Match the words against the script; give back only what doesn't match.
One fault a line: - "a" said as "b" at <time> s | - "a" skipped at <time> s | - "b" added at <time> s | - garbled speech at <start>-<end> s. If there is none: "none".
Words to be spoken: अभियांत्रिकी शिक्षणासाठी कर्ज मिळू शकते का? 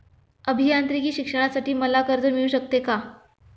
- "मला" added at 1.7 s